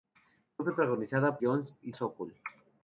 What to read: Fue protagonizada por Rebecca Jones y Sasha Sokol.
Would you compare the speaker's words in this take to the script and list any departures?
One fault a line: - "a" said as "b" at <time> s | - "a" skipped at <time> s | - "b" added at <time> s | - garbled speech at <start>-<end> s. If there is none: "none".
- "por Rebecca" skipped at 1.4 s
- "Sasha" skipped at 1.9 s